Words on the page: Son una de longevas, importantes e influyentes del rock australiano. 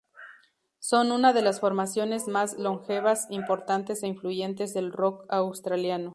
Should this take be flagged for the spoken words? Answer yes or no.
yes